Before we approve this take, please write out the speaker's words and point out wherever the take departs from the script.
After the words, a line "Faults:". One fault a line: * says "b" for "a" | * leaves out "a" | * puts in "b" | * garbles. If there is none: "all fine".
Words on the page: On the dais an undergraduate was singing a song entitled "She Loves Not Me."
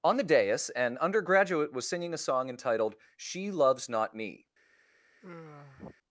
On the dais an undergraduate was singing a song entitled "She Loves Not Me."
Faults:
all fine